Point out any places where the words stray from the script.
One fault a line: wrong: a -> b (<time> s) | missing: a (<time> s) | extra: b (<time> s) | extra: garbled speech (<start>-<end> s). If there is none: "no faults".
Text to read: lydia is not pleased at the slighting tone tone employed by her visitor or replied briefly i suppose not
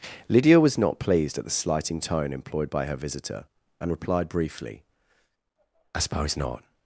wrong: is -> was (0.6 s)
missing: tone (2.3 s)
wrong: or -> and (3.8 s)